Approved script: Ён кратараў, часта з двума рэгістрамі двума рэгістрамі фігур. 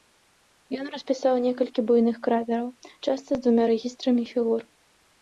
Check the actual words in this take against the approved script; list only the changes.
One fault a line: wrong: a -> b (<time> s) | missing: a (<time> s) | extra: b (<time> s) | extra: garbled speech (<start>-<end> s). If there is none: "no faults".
extra: распісаў некалькі буйных (0.9 s)
missing: двума рэгістрамі (4.2 s)